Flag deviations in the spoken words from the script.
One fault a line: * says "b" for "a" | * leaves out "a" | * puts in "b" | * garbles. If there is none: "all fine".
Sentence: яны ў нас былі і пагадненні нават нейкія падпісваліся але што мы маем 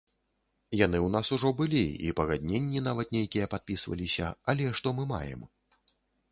* puts in "ужо"